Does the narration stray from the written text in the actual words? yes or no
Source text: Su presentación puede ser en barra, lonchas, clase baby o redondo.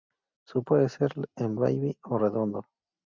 yes